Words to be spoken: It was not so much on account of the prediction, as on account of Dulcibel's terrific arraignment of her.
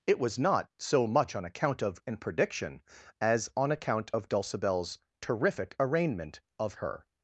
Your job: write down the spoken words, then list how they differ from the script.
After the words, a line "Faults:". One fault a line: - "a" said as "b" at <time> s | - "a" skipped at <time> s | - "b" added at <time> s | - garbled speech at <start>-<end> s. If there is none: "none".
It was not so much on account of an prediction, as on account of Dulcibel's terrific arraignment of her.
Faults:
- "the" said as "an" at 2.1 s